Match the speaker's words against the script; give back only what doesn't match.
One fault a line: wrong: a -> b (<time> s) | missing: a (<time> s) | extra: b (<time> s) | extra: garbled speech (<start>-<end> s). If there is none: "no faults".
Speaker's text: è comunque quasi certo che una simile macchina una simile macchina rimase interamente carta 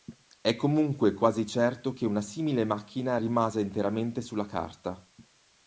missing: una simile macchina (3.2 s)
extra: sulla (4.2 s)